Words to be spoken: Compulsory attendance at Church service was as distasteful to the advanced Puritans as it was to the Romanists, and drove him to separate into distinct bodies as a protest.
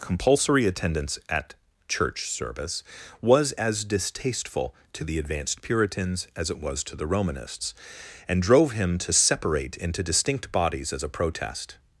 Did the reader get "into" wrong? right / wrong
right